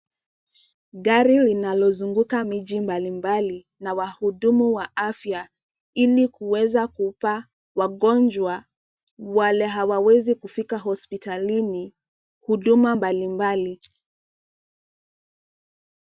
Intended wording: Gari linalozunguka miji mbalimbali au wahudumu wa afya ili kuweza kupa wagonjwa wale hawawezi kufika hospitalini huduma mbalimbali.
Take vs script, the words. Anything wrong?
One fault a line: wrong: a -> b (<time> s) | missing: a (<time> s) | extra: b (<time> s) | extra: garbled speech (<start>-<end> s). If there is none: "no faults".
wrong: au -> na (3.8 s)